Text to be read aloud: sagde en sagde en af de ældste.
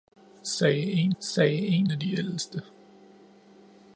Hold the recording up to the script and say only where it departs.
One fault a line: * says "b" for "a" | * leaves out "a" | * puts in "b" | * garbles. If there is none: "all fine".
all fine